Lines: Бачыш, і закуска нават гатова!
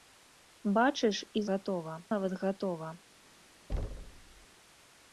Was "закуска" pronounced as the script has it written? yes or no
no